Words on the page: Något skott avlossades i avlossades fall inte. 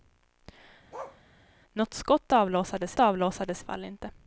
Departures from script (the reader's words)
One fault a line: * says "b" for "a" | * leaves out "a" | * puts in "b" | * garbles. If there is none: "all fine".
all fine